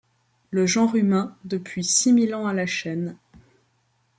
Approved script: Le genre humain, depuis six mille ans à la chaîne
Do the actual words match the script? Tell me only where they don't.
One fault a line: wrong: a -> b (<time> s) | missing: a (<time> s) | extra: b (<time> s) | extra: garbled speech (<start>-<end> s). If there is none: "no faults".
no faults